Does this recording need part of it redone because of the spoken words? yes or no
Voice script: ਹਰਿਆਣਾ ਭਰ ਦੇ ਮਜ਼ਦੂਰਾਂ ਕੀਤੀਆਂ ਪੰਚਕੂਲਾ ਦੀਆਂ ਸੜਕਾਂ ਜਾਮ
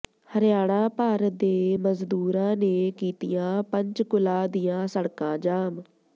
yes